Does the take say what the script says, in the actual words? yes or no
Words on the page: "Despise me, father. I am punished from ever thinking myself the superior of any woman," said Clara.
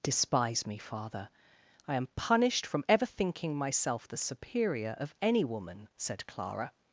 yes